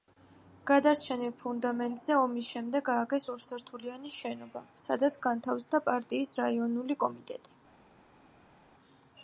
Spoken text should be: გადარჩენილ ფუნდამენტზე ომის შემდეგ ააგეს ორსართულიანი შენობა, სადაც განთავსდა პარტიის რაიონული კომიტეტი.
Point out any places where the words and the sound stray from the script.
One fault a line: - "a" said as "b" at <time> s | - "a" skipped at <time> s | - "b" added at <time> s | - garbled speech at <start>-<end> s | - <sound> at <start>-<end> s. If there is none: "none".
none